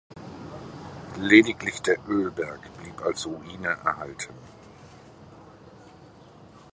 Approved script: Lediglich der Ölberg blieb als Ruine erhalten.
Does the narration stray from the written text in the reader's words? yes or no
no